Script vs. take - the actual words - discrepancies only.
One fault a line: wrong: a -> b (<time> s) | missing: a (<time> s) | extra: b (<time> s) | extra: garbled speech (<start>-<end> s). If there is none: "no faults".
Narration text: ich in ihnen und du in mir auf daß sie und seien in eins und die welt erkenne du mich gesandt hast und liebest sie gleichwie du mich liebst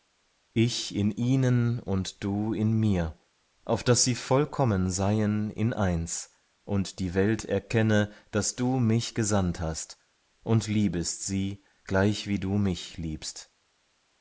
wrong: und -> vollkommen (4.2 s)
extra: daß (8.3 s)